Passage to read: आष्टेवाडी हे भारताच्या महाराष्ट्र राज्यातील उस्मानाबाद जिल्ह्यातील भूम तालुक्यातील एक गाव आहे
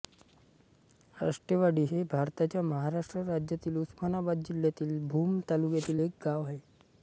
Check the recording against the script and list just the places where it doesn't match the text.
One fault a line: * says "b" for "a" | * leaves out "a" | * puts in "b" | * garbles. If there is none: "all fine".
all fine